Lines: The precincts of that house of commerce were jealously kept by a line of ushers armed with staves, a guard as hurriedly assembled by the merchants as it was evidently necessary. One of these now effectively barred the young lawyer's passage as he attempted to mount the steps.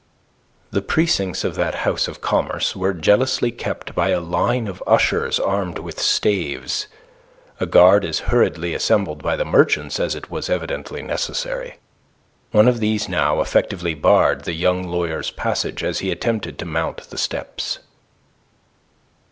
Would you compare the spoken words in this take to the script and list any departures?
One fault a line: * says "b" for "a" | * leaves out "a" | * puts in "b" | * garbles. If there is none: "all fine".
all fine